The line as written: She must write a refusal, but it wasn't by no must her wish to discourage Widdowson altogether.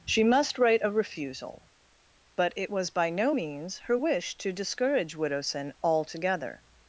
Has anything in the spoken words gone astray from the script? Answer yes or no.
yes